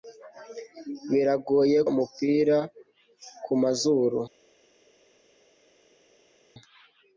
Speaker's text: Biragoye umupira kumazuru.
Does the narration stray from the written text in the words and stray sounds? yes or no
no